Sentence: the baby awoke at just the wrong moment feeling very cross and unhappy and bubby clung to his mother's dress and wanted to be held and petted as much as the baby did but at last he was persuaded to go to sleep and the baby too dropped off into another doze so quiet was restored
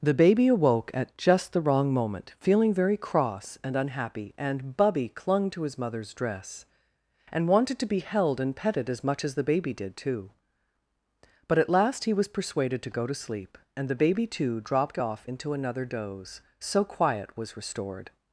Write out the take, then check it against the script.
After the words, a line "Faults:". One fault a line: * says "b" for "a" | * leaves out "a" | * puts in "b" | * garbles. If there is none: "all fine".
the baby awoke at just the wrong moment feeling very cross and unhappy and bubby clung to his mother's dress and wanted to be held and petted as much as the baby did too but at last he was persuaded to go to sleep and the baby too dropped off into another doze so quiet was restored
Faults:
* puts in "too"